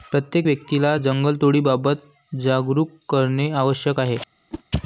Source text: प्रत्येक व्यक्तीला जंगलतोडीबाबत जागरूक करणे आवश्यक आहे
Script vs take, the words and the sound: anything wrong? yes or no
yes